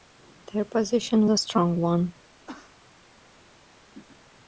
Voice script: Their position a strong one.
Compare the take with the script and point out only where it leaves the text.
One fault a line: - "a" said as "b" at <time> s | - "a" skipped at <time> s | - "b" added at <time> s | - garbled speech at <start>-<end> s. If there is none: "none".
none